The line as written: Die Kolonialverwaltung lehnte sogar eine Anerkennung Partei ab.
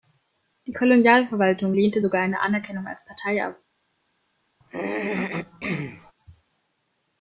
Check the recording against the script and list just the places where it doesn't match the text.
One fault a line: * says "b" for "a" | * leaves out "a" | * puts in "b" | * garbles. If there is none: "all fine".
* puts in "als"